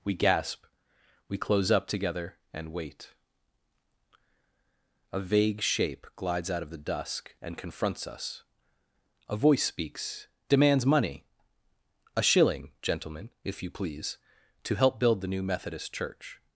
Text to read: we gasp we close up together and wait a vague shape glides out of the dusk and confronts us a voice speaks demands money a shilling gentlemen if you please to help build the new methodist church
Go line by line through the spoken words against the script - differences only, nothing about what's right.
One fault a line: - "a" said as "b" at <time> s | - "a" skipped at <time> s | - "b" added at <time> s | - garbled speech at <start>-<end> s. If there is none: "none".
none